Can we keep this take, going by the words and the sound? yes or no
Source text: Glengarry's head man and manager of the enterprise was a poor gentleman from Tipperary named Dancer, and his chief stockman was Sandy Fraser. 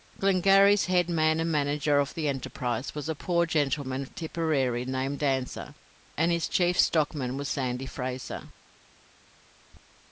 no